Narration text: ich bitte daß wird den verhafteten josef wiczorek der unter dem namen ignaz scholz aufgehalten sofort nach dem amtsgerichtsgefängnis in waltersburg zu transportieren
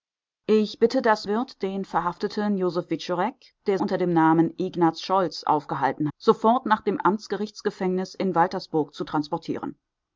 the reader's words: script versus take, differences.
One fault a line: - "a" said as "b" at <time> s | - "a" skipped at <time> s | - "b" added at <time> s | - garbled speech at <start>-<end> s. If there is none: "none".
none